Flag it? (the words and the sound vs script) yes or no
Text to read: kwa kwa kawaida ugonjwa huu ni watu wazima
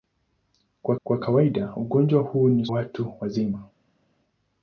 no